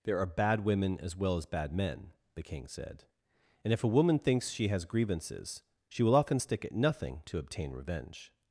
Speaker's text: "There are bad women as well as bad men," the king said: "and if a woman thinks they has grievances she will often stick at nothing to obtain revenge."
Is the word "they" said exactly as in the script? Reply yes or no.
no